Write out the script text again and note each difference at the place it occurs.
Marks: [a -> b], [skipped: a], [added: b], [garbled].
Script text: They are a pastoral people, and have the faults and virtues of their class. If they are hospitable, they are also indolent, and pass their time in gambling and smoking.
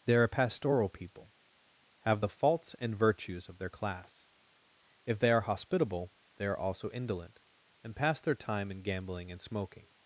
They are a pastoral people, [skipped: and] have the faults and virtues of their class. If they are hospitable, they are also indolent, and pass their time in gambling and smoking.